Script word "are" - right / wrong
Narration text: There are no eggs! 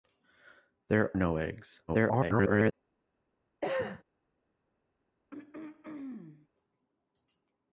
wrong